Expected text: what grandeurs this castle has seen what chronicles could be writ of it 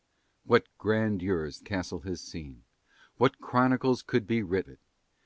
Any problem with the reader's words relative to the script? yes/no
yes